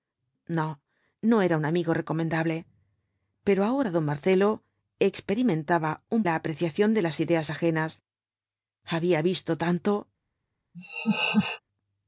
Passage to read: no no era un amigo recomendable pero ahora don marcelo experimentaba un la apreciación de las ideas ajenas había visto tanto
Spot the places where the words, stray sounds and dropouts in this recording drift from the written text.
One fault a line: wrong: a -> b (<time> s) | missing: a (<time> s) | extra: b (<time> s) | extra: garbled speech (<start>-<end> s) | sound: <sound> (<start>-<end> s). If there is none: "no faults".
sound: laugh (10.7-11.6 s)